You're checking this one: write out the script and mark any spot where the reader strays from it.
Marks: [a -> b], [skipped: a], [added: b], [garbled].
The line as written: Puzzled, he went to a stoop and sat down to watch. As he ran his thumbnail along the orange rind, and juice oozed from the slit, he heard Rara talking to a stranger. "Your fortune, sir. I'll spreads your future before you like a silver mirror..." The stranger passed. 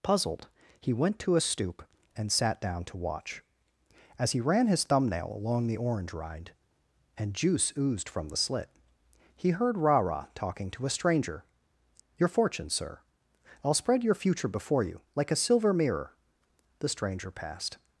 Puzzled, he went to a stoop and sat down to watch. As he ran his thumbnail along the orange rind, and juice oozed from the slit, he heard Rara talking to a stranger. "Your fortune, sir. I'll [spreads -> spread] your future before you like a silver mirror..." The stranger passed.